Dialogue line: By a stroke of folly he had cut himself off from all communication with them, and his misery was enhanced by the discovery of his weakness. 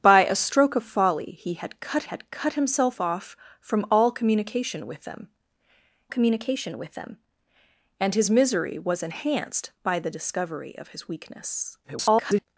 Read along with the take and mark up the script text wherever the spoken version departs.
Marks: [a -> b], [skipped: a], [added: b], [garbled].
By a stroke of folly he had cut [added: had cut] himself off from all communication with them, [added: communication with them] and his misery was enhanced by the discovery of his weakness. [garbled]